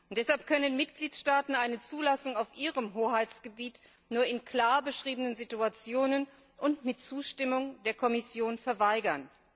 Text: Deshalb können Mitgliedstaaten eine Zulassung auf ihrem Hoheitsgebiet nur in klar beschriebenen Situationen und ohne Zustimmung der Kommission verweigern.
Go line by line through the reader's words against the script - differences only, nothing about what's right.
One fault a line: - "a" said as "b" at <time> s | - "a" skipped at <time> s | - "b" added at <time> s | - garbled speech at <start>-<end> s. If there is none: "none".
- "ohne" said as "mit" at 6.9 s